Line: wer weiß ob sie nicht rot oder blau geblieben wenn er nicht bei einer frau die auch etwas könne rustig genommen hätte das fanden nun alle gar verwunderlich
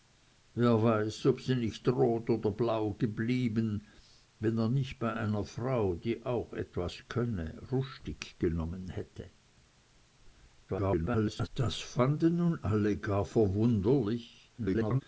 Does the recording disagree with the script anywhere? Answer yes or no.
yes